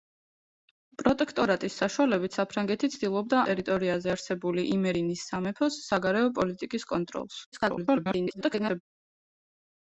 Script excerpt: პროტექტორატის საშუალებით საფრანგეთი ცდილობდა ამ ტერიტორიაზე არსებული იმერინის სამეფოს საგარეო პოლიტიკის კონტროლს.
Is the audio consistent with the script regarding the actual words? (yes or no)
no